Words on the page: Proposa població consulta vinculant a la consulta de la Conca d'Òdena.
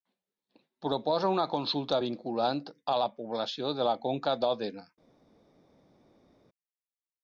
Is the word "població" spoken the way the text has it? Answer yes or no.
no